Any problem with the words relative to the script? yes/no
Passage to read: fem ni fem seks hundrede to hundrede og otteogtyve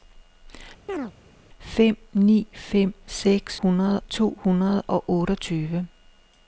no